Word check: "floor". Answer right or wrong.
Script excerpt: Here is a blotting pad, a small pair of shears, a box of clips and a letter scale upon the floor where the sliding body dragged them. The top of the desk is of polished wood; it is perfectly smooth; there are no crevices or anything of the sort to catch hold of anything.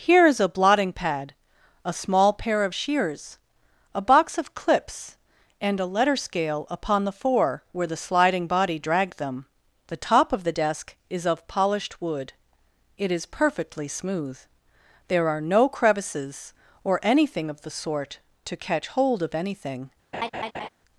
wrong